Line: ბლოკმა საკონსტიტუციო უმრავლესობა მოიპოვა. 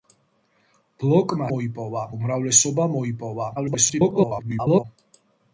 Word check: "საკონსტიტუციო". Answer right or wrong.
wrong